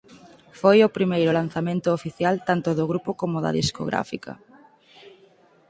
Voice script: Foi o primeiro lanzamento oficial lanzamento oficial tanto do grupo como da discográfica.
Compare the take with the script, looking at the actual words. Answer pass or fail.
fail